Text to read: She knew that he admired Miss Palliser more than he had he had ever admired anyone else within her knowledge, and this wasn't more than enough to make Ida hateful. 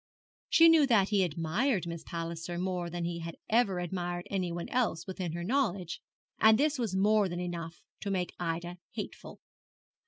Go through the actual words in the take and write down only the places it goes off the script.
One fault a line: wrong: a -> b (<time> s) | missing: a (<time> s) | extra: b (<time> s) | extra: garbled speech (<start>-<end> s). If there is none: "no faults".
missing: he had (3.4 s)
wrong: wasn't -> was (6.8 s)